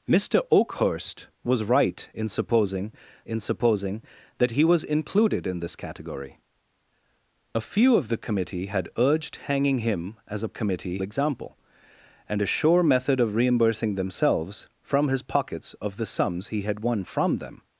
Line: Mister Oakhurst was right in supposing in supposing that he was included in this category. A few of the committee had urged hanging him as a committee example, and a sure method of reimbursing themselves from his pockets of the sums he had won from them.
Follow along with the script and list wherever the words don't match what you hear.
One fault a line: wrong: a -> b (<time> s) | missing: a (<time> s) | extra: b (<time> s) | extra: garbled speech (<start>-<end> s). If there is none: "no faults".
no faults